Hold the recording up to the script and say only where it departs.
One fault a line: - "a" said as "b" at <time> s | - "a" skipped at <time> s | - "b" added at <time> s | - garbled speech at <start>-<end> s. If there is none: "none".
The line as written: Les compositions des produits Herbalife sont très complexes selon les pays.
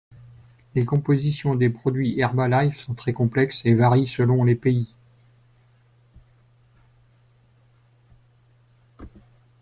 - "et varient" added at 3.6 s